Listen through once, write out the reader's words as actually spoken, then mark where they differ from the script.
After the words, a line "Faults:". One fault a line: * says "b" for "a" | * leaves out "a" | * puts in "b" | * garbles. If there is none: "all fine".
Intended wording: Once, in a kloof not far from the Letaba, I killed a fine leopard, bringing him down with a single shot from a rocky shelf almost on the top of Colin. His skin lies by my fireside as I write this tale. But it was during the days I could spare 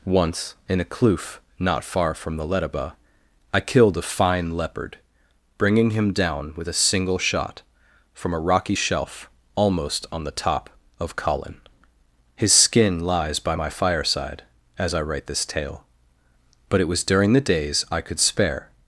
Once, in a kloof not far from the Letaba, I killed a fine leopard, bringing him down with a single shot from a rocky shelf almost on the top of Colin. His skin lies by my fireside as I write this tale. But it was during the days I could spare
Faults:
all fine